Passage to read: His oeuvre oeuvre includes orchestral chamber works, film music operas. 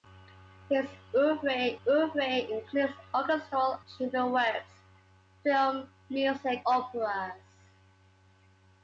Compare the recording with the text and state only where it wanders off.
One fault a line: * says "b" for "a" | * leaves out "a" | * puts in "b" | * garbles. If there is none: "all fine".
all fine